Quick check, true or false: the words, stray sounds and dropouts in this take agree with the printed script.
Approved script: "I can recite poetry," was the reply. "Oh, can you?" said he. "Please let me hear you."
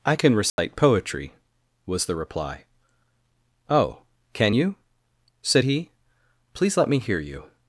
false